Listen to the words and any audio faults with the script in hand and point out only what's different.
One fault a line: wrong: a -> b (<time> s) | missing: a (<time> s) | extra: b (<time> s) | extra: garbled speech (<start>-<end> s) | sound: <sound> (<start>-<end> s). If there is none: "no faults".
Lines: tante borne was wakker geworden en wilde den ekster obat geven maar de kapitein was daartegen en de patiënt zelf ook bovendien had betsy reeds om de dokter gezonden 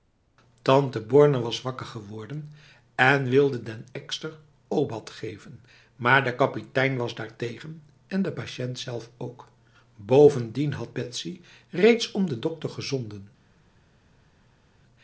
no faults